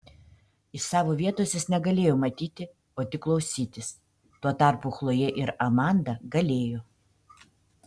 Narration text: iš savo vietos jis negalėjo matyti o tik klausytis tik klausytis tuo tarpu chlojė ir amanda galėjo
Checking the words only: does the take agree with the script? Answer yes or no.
no